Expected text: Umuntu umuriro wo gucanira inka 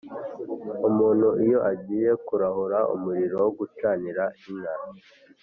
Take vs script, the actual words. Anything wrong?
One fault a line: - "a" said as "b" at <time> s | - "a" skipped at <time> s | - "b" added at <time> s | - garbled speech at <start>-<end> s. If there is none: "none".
- "iyo agiye kurahura" added at 1.4 s